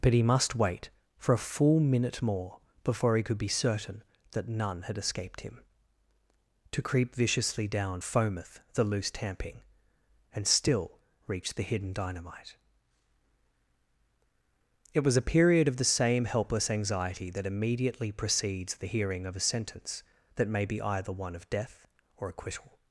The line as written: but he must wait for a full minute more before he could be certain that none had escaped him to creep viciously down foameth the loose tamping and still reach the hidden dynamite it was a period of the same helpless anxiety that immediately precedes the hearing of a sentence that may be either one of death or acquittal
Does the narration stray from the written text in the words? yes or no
no